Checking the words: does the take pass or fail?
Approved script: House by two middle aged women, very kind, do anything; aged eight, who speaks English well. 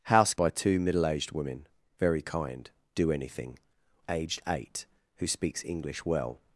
pass